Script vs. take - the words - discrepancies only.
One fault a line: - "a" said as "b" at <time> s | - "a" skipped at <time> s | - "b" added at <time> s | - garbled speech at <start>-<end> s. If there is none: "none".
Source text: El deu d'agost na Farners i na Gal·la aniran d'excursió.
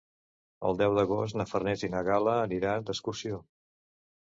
none